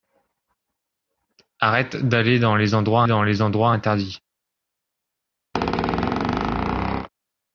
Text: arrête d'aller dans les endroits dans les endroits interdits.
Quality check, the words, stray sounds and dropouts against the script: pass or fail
fail